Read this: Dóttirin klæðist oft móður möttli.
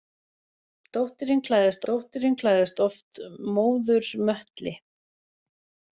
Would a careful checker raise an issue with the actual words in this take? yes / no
yes